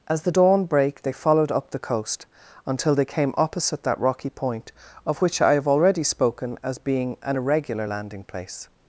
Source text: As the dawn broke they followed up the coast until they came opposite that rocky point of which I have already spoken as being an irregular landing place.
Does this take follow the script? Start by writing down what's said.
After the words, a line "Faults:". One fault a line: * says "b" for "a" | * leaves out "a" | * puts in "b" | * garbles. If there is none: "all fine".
As the dawn brake they followed up the coast until they came opposite that rocky point of which I have already spoken as being an irregular landing place.
Faults:
* says "brake" for "broke"